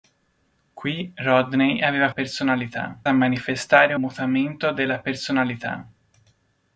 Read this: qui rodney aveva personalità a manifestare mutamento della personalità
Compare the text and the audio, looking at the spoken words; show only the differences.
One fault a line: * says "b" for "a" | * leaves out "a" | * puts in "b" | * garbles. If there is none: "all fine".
all fine